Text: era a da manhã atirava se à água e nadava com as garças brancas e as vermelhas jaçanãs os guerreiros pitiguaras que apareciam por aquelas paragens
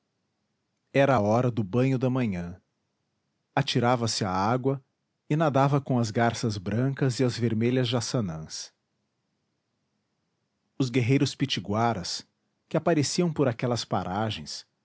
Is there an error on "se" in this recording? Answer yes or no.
no